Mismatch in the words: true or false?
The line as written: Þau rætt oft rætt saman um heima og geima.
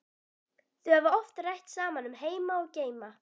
true